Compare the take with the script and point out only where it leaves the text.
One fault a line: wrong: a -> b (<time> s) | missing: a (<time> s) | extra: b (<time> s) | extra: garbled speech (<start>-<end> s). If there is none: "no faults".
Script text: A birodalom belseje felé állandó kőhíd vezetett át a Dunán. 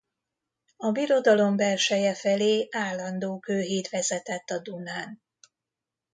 missing: át (4.5 s)